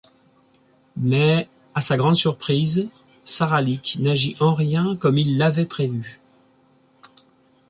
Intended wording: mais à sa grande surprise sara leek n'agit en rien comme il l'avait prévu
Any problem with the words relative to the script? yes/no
no